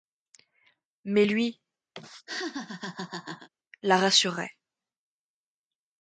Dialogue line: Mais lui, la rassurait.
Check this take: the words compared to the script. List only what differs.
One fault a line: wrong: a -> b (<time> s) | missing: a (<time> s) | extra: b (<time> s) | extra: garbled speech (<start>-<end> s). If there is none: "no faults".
no faults